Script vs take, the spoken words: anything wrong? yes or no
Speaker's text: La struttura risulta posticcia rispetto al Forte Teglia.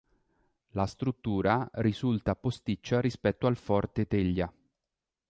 no